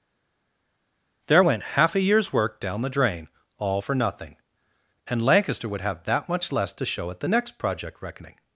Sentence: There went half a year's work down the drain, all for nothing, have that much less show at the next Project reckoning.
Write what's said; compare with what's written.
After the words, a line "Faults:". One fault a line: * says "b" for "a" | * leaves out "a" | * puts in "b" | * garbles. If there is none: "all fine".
There went half a year's work down the drain, all for nothing, and Lancaster would have that much less to show at the next Project reckoning.
Faults:
* puts in "and Lancaster would"
* puts in "to"